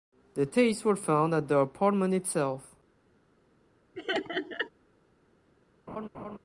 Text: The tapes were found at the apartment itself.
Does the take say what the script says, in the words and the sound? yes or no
no